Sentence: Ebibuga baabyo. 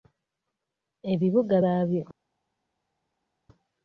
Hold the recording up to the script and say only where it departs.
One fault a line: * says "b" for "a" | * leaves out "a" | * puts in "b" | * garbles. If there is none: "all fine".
all fine